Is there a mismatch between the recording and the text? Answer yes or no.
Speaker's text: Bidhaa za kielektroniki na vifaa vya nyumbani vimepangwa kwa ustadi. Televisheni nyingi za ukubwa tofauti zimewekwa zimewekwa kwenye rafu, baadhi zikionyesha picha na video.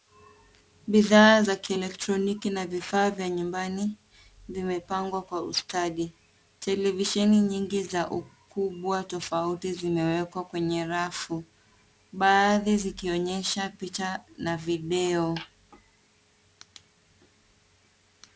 yes